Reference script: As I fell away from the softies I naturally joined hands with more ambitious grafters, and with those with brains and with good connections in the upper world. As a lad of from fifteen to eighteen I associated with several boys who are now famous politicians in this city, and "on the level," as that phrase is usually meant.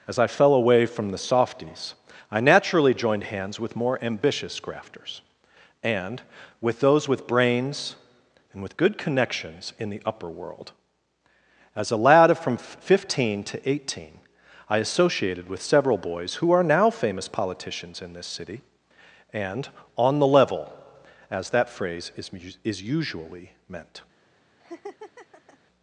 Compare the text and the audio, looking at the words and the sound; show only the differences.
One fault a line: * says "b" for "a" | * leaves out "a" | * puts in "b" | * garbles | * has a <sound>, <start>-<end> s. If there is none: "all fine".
* puts in "is"
* has a laugh, 24.6-25.6 s